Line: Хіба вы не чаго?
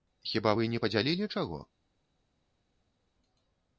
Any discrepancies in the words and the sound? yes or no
yes